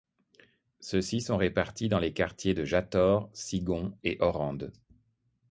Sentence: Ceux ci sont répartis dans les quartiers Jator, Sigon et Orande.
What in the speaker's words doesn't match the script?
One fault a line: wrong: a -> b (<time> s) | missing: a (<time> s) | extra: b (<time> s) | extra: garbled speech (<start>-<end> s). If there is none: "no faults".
extra: de (2.5 s)